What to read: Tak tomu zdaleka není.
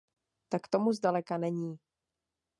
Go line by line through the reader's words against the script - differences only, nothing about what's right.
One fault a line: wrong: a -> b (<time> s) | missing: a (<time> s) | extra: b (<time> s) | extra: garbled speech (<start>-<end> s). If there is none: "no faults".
no faults